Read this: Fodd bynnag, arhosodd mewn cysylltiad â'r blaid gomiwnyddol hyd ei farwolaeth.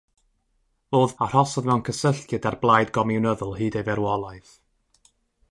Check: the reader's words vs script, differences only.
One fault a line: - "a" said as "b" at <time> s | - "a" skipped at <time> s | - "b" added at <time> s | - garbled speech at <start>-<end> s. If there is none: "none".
- "bynnag" skipped at 1.1 s